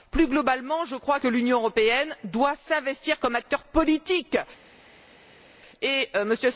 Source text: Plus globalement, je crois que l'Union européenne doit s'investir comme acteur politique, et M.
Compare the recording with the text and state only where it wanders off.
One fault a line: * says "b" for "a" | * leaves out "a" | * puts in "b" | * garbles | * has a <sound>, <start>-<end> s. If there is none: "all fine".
all fine